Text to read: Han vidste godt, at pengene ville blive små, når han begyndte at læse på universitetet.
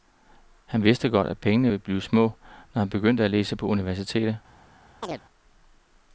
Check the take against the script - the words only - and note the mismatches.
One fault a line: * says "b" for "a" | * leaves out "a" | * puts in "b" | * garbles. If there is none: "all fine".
all fine